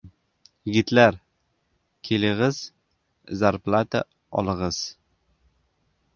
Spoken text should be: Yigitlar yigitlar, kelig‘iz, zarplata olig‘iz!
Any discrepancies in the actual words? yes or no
yes